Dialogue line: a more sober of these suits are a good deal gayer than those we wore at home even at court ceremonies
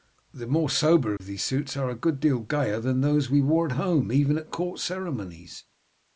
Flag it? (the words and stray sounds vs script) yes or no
yes